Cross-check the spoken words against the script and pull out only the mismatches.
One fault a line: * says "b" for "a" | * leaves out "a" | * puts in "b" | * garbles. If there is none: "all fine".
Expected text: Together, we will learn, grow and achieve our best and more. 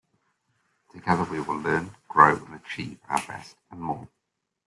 all fine